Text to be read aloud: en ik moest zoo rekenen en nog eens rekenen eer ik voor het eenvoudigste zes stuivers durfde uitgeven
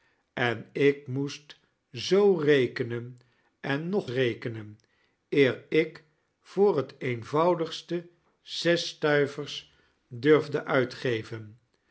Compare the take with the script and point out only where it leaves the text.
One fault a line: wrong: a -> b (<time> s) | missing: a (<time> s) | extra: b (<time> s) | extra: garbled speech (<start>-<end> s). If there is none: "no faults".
missing: eens (4.1 s)